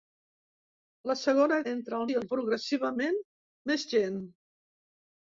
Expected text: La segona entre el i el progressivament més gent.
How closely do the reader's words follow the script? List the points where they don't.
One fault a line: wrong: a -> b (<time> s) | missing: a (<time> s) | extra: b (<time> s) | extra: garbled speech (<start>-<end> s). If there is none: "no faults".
no faults